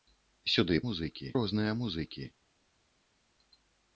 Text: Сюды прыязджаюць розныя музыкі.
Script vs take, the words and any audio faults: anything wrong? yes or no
yes